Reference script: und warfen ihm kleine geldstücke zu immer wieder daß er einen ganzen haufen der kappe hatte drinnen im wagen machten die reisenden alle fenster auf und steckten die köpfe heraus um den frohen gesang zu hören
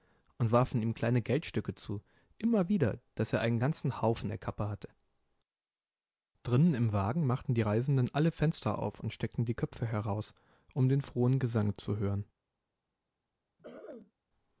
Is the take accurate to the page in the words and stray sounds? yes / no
no